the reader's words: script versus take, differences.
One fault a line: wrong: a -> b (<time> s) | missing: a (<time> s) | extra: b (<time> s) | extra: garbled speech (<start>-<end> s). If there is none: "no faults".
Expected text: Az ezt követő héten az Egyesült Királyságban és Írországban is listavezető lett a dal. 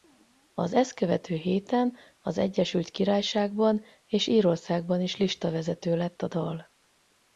no faults